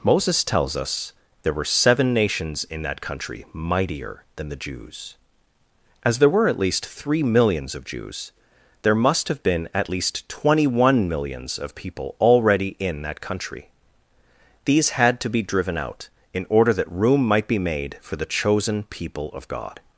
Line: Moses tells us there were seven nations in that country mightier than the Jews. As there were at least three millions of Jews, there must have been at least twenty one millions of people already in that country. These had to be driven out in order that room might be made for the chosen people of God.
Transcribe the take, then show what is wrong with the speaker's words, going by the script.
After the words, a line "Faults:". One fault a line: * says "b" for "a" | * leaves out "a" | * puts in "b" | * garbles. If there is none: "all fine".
Moses tells us there were seven nations in that country mightier than the Jews. As there were at least three millions of Jews, there must have been at least twenty one millions of people already in that country. These had to be driven out in order that room might be made for the chosen people of God.
Faults:
all fine